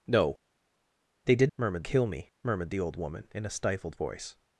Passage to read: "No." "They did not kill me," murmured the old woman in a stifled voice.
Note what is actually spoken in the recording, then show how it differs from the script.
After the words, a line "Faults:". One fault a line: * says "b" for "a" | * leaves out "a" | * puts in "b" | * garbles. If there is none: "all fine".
"No." "They did murmured kill me," murmured the old woman in a stifled voice.
Faults:
* says "murmured" for "not"